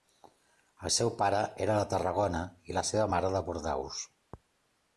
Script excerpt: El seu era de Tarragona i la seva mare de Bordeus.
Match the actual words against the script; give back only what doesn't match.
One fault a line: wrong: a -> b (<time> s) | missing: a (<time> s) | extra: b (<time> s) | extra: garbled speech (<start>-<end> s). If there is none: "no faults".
extra: pare (1.2 s)